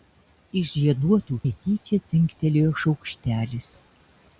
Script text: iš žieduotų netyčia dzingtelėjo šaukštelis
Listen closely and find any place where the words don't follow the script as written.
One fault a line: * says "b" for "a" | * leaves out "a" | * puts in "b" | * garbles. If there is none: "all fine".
all fine